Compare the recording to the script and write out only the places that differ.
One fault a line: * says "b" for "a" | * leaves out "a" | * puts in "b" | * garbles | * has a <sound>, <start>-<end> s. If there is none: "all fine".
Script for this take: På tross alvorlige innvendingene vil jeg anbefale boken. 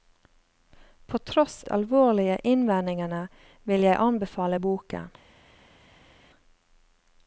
all fine